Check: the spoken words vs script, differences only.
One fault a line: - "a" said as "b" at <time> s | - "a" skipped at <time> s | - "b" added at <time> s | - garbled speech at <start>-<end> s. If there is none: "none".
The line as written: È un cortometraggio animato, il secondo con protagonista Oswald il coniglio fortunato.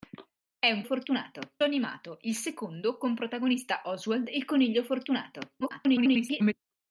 - "cortometraggio" said as "fortunato" at 0.8 s
- garbled speech at 5.6-6.5 s